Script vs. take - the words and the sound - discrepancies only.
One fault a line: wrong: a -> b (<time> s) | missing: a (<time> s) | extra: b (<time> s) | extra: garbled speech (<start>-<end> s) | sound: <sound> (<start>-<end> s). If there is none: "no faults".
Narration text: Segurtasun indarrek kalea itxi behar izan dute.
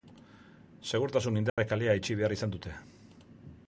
sound: dropout (1.5-1.6 s)